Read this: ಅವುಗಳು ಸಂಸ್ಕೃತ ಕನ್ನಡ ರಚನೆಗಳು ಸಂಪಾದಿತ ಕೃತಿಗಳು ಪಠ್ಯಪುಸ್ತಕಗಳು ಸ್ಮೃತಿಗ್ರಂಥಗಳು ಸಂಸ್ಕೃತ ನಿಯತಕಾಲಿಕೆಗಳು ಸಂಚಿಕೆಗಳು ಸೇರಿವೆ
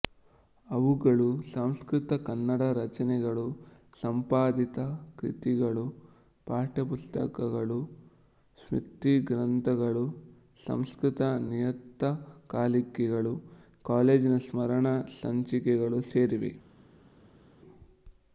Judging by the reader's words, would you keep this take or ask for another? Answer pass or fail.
fail